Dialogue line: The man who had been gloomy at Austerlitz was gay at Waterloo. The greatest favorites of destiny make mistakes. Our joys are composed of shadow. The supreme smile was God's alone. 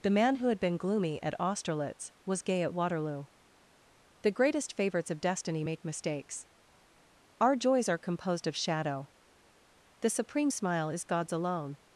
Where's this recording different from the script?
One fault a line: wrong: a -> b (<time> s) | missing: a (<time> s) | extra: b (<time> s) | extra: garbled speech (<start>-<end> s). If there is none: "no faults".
wrong: was -> is (10.9 s)